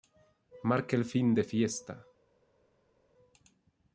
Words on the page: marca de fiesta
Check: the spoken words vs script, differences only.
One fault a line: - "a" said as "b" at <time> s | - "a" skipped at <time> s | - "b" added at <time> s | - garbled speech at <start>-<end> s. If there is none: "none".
- "el fin" added at 0.9 s